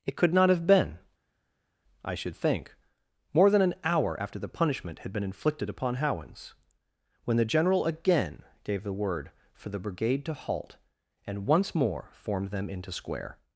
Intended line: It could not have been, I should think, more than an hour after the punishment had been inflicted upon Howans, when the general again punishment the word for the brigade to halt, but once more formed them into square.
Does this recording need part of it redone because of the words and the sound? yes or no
yes